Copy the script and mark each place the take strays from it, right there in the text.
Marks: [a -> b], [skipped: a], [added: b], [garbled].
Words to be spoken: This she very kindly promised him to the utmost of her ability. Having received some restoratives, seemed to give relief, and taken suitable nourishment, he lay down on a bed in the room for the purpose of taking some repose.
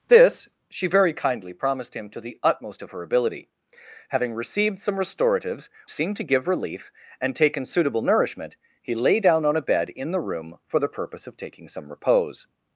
This she very kindly promised him to the utmost of her ability. Having received some restoratives, seemed to give relief, and taken suitable nourishment, he lay down on a bed in the room for the purpose of taking some repose.